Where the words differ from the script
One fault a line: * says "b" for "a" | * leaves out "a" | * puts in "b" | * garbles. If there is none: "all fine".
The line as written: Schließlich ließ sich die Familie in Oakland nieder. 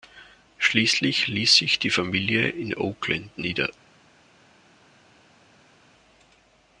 all fine